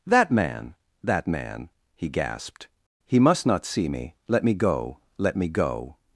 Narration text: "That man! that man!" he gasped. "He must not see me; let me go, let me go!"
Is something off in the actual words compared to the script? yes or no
no